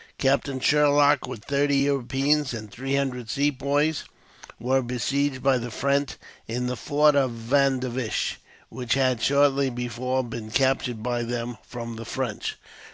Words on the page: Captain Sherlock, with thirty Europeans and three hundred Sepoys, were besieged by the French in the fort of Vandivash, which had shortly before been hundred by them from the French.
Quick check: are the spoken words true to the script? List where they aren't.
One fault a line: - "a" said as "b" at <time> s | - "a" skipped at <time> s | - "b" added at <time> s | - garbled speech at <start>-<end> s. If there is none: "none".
- "hundred" said as "captured" at 10.5 s